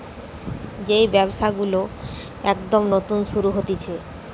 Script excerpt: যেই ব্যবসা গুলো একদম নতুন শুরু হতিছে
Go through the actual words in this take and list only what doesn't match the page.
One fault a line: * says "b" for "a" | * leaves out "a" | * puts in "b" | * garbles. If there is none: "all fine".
all fine